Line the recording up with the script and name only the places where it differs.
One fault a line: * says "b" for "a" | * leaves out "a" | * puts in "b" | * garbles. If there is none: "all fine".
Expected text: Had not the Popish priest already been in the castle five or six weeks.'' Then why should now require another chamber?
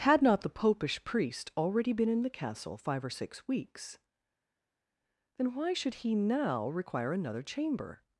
* puts in "he"